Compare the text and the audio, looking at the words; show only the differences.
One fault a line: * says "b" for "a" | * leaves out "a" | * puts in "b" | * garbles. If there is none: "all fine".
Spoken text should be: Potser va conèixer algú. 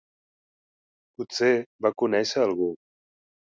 all fine